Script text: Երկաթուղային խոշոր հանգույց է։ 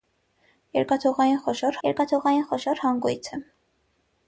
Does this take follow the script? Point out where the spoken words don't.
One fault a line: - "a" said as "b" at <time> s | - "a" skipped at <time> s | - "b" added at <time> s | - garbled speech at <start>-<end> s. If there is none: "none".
- "երկաթուղային խոշոր" added at 1.9 s